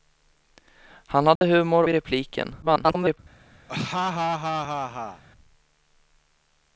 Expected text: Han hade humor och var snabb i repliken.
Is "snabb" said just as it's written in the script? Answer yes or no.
no